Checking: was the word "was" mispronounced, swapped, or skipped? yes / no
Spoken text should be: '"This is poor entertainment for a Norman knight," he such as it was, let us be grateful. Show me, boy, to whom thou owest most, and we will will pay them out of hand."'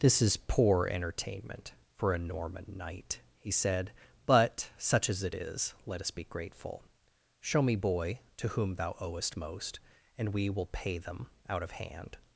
yes